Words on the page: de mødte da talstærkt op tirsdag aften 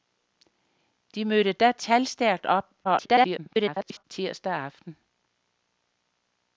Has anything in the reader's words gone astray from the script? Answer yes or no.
yes